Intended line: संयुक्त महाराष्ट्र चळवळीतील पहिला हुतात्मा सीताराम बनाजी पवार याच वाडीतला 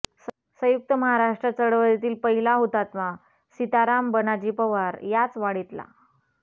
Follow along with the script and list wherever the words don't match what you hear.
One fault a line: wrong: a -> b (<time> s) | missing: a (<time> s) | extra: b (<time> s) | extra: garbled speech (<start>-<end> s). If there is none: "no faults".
no faults